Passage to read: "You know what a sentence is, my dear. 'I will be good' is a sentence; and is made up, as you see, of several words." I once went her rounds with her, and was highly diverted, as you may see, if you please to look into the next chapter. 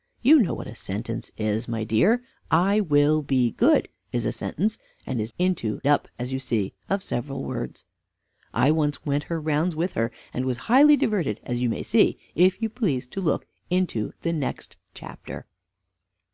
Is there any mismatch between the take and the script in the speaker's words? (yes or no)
yes